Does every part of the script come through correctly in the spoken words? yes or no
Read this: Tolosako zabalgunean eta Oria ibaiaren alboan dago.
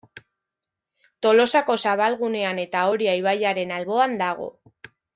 yes